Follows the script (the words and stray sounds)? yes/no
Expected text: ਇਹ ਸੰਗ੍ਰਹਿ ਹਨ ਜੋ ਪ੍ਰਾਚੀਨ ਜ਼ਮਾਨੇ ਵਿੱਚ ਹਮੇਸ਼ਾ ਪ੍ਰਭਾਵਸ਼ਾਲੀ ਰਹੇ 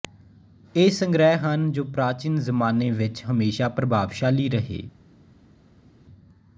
yes